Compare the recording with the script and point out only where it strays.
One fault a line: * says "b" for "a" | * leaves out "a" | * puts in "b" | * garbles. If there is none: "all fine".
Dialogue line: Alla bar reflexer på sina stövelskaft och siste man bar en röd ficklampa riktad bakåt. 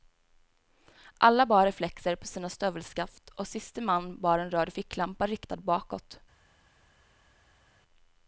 all fine